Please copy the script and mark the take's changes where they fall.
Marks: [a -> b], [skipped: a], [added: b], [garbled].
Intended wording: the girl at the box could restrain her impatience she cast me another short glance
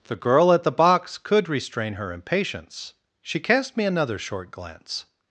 the girl at the box could restrain her impatience she cast me another short glance